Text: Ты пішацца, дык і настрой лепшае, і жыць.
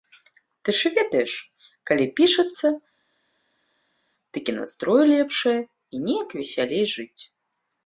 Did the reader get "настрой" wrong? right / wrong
right